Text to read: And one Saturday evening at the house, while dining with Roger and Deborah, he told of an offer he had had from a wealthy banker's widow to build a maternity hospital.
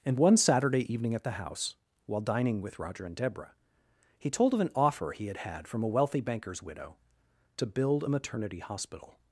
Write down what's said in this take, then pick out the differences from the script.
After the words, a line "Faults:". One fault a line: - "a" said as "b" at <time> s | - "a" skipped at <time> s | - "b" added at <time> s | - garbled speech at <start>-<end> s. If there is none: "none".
And one Saturday evening at the house, while dining with Roger and Deborah, he told of an offer he had had from a wealthy banker's widow to build a maternity hospital.
Faults:
none